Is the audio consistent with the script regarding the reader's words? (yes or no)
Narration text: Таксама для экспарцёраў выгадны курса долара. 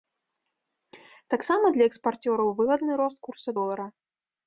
no